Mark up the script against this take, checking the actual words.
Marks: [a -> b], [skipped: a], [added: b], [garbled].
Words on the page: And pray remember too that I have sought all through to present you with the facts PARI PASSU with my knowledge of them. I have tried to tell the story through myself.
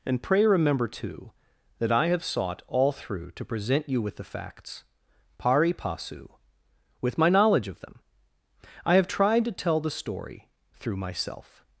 And pray remember too that I have sought all through to present you with the facts PARI PASSU with my knowledge of them. I have tried to tell the story through myself.